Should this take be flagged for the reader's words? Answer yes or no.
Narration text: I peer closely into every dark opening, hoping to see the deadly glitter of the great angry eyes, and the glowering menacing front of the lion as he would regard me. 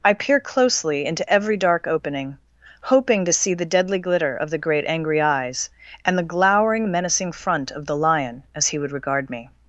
no